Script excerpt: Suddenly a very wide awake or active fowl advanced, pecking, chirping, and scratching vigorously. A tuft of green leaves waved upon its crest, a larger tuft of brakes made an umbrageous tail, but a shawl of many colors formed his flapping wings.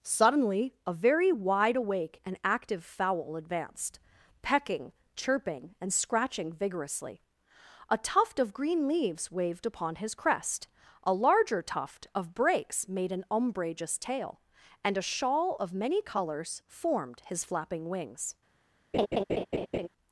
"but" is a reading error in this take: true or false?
true